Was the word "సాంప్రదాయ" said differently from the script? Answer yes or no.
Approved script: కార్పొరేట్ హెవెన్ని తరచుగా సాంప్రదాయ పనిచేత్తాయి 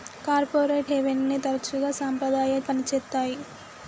no